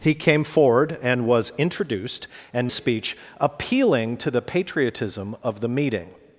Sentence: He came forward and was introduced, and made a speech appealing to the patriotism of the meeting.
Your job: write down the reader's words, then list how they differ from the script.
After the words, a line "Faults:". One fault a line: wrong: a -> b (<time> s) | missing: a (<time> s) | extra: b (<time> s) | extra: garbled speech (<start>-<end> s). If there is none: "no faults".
He came forward and was introduced, and a speech appealing to the patriotism of the meeting.
Faults:
missing: made (2.7 s)